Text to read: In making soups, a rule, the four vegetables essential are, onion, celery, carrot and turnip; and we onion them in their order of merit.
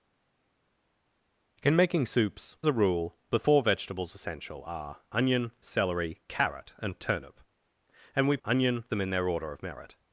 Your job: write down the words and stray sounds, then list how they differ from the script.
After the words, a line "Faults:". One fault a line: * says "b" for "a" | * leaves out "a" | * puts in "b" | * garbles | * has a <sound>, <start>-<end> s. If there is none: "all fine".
In making soups, a rule, the four vegetables essential are, onion, celery, carrot and turnip; and we onion them in their order of merit.
Faults:
all fine